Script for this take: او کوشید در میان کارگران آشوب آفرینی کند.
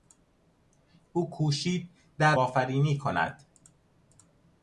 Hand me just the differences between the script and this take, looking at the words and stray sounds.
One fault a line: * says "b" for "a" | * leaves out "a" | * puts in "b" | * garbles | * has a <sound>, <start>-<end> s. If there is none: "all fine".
* leaves out "میان کارگران آشوب"